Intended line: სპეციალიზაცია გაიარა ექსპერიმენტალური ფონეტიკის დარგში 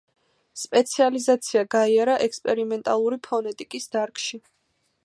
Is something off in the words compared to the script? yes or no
no